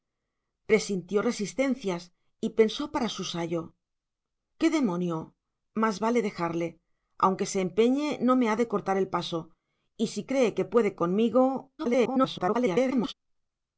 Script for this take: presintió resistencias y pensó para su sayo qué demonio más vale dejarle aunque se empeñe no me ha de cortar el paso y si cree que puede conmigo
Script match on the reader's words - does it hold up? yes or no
no